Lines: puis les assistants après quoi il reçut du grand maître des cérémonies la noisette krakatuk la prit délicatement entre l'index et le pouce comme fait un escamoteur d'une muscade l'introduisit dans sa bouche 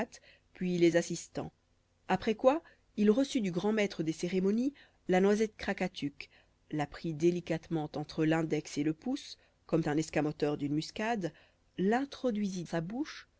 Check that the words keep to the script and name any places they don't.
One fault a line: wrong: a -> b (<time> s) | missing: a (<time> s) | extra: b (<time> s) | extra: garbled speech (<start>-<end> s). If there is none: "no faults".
missing: fait (9.8 s)
missing: dans (12.7 s)